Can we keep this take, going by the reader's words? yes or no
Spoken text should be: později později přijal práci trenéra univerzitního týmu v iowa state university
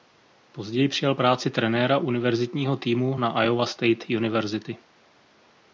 no